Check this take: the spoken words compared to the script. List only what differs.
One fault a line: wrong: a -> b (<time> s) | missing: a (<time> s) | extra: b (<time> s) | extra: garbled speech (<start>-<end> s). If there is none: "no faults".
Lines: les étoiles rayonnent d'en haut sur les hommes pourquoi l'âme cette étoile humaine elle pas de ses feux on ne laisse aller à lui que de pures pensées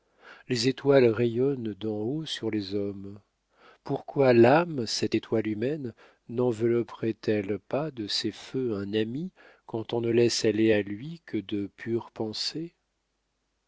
extra: nenvelopperait (6.3 s)
extra: un ami quand (8.8 s)